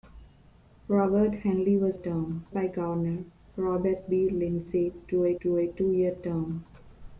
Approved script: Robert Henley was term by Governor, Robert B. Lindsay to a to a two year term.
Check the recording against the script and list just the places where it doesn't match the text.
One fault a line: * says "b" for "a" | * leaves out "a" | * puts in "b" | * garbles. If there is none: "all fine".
all fine